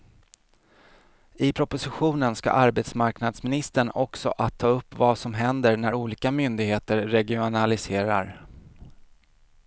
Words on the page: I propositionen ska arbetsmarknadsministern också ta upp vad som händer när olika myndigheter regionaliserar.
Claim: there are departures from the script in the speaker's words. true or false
true